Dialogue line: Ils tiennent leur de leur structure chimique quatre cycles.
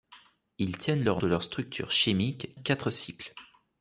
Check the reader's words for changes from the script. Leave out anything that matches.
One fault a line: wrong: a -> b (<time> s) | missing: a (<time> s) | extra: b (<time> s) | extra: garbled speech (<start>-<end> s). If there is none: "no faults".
no faults